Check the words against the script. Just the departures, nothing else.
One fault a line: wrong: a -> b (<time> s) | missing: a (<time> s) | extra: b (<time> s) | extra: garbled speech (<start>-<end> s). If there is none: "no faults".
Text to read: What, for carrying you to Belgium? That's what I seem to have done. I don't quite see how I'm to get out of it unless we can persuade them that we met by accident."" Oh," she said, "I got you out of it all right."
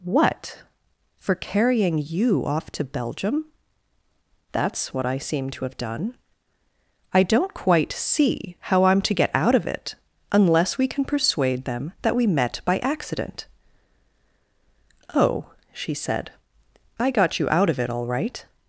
extra: off (2.4 s)